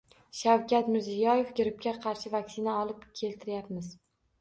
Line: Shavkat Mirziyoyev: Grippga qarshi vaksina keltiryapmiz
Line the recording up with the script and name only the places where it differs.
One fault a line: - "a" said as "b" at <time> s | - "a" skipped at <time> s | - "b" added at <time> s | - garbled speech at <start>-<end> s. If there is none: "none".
- "olib" added at 2.8 s